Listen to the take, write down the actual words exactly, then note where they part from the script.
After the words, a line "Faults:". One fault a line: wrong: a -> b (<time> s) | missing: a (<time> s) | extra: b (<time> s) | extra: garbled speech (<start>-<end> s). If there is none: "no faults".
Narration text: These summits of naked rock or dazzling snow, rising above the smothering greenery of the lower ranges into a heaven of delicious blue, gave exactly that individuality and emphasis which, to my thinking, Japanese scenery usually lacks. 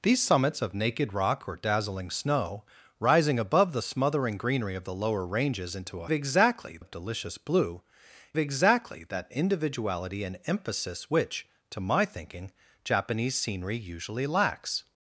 These summits of naked rock or dazzling snow, rising above the smothering greenery of the lower ranges into a exactly of delicious blue, exactly that individuality and emphasis which, to my thinking, Japanese scenery usually lacks.
Faults:
wrong: heaven -> exactly (6.1 s)
missing: gave (7.8 s)